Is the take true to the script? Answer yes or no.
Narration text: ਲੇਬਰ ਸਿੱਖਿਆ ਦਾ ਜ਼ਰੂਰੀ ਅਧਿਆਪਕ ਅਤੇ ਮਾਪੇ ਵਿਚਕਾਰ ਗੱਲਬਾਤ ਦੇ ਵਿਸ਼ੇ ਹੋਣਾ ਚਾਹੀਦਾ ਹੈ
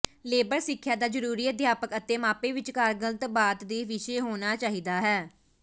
yes